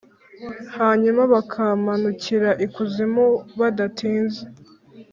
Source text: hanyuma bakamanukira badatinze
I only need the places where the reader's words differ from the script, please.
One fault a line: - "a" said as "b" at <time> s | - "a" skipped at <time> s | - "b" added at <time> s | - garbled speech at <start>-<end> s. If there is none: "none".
- "ikuzimu" added at 2.7 s